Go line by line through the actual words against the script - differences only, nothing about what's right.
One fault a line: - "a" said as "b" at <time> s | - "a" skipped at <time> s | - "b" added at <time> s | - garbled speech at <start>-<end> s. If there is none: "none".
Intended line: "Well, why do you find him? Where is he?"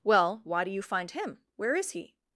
none